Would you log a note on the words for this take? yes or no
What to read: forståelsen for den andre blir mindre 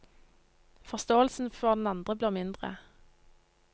no